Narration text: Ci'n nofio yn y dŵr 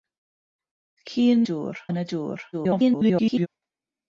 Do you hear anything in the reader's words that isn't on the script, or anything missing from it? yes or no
yes